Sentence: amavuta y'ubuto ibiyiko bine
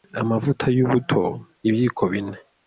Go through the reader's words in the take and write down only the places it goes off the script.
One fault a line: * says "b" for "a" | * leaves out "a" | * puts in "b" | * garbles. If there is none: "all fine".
all fine